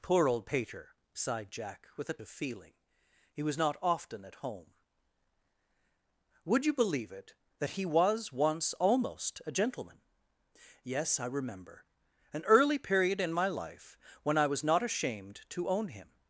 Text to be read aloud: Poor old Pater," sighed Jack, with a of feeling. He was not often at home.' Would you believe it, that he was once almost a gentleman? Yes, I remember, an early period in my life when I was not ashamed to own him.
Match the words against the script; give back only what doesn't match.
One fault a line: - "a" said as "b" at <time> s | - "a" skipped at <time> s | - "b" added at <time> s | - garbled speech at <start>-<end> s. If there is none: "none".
none